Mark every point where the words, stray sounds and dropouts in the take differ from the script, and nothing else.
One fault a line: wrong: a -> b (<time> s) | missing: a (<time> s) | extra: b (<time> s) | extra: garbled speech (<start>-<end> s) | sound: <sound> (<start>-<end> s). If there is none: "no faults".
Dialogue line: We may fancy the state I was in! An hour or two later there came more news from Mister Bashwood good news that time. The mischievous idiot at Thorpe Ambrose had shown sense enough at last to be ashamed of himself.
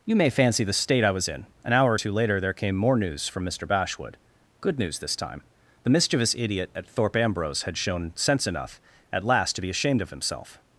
wrong: We -> You (0.0 s)
wrong: that -> this (5.0 s)